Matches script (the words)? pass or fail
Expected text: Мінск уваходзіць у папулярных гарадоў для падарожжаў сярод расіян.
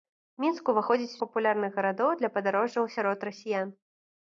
pass